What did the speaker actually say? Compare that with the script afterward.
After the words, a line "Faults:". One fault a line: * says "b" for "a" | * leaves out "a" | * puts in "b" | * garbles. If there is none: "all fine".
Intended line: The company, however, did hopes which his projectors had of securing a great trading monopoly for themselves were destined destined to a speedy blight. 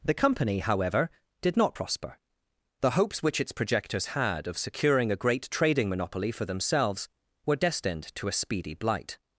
The company, however, did not prosper. The hopes which its projectors had of securing a great trading monopoly for themselves were destined to a speedy blight.
Faults:
* puts in "not prosper The"
* says "its" for "his"
* leaves out "destined"